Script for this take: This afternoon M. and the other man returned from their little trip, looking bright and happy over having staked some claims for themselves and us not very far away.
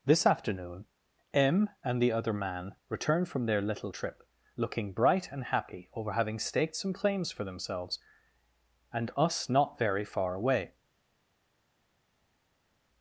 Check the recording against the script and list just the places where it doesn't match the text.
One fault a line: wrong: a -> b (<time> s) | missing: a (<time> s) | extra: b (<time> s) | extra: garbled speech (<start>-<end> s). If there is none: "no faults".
no faults